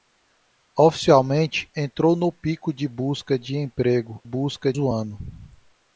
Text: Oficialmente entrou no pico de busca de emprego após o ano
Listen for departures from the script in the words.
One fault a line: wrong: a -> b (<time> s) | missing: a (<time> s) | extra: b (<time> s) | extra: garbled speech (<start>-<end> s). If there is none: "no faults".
wrong: após -> busca (4.2 s)